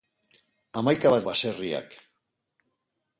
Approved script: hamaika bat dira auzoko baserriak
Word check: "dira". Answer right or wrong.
wrong